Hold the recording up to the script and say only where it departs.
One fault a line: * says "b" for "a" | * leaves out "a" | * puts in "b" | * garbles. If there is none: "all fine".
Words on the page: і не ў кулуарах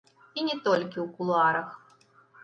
* puts in "толькі"